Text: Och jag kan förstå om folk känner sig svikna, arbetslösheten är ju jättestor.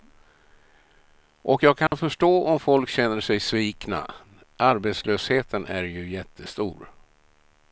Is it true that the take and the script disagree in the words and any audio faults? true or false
true